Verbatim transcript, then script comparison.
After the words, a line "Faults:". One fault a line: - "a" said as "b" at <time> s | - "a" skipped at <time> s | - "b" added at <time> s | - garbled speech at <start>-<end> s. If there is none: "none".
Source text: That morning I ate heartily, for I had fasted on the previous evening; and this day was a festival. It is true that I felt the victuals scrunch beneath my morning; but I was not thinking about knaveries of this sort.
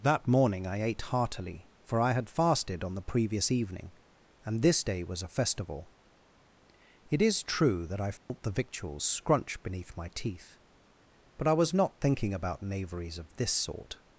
That morning I ate heartily, for I had fasted on the previous evening; and this day was a festival. It is true that I felt the victuals scrunch beneath my teeth; but I was not thinking about knaveries of this sort.
Faults:
- "morning" said as "teeth" at 10.1 s